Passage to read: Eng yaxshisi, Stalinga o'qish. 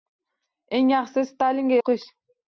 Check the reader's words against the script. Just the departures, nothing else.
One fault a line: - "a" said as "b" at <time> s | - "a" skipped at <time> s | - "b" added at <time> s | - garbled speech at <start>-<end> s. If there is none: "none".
none